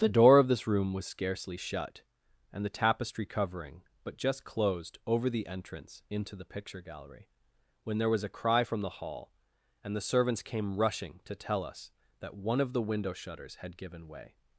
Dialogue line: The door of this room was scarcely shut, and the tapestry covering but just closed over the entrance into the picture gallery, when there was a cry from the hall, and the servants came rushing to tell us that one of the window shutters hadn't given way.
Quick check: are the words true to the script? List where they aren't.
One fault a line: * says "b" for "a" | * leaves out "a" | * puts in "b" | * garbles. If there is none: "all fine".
* says "had" for "hadn't"